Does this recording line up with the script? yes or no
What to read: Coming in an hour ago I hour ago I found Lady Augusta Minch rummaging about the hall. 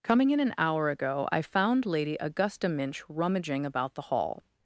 no